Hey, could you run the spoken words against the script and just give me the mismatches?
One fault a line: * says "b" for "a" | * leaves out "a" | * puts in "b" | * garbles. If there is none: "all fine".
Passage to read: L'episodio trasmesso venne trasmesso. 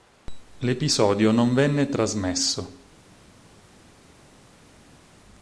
* says "non" for "trasmesso"